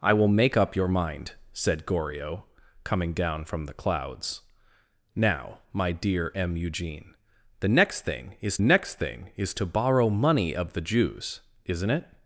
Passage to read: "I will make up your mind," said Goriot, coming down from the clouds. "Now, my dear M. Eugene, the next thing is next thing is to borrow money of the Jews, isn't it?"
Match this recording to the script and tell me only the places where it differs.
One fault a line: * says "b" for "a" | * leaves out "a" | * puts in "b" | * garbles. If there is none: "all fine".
all fine